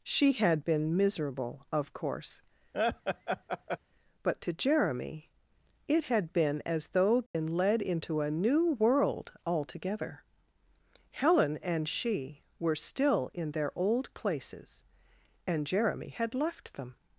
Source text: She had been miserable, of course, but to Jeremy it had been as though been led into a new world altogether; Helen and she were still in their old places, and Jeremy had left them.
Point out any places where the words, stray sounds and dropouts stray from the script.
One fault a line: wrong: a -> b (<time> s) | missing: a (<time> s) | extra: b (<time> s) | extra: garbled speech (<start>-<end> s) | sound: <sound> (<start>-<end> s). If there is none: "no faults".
sound: laugh (2.7-3.8 s)
sound: dropout (7.3-7.3 s)